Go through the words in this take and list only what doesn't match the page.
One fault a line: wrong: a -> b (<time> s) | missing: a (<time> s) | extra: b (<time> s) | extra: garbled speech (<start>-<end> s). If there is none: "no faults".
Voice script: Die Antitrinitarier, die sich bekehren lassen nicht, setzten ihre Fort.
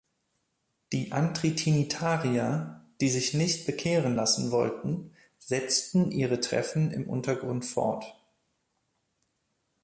extra: nicht (3.4 s)
wrong: nicht -> wollten (4.5 s)
extra: Treffen im Untergrund (6.4 s)